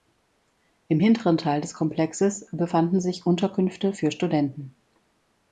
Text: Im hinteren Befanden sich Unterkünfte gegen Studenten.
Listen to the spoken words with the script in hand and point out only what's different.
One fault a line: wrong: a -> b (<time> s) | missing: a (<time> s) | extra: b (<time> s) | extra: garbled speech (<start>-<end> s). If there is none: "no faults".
extra: Teil des Komplexes (1.4 s)
wrong: gegen -> für (3.9 s)